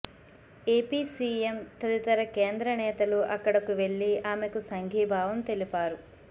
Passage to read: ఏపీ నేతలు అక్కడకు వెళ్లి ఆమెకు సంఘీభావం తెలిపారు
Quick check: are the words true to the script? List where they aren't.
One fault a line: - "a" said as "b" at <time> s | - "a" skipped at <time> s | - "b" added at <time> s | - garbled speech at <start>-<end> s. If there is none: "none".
- "సీఎం తదితర కేంద్ర" added at 1.1 s